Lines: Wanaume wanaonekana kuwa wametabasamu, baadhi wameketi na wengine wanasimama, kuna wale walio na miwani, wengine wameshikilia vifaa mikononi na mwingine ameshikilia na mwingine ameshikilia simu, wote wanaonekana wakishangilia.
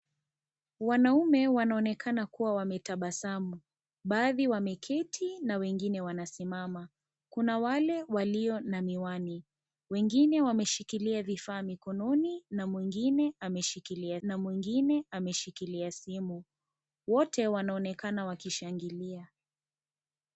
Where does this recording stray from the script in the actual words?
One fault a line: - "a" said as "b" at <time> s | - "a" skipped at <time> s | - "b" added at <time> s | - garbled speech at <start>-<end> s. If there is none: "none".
none